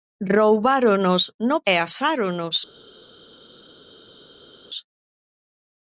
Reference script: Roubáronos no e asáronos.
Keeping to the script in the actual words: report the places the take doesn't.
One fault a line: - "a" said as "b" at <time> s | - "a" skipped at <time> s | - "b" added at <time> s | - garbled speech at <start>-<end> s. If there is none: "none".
none